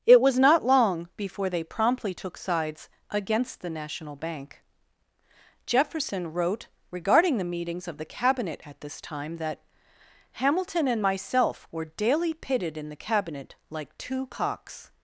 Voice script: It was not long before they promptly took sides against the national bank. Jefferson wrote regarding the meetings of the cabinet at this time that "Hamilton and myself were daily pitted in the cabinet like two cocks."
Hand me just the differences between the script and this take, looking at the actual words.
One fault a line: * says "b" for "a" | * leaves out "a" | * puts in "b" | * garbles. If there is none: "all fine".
all fine